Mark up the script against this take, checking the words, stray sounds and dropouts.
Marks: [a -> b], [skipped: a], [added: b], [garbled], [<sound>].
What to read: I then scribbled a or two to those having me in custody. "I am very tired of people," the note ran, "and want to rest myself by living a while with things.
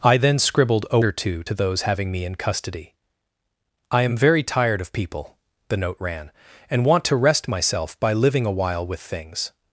I then scribbled a or two to those having me in custody. "I am very tired of people," the note ran, "and want to rest myself by living a while with things.